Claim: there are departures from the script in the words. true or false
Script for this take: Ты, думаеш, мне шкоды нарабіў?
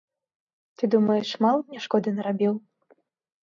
true